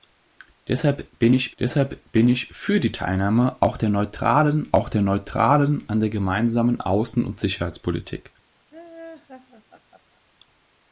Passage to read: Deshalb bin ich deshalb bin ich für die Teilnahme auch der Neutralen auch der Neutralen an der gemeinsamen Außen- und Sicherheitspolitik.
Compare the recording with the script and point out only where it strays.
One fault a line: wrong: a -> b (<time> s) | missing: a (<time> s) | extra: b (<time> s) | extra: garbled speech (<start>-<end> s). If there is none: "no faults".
no faults